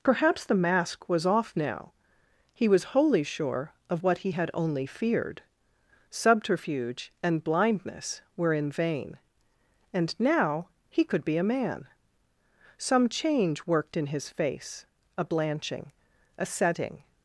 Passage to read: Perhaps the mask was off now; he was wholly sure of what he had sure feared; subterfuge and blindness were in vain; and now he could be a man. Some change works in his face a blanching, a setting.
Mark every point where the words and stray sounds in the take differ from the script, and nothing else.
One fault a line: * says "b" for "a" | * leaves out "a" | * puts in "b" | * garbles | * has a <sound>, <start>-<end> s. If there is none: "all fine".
* says "only" for "sure"
* says "worked" for "works"